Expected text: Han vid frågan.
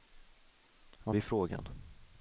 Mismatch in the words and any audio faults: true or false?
false